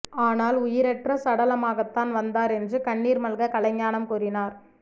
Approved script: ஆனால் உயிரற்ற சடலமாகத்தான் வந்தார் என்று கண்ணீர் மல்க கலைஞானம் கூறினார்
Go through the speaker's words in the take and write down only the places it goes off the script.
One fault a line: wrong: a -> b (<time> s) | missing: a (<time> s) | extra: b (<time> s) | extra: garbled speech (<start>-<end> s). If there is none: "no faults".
no faults